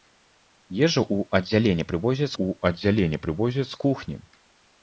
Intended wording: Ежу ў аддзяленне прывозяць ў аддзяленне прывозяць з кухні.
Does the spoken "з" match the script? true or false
true